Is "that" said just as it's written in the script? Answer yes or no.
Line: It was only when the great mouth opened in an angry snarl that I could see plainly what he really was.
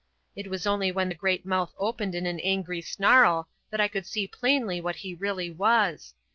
yes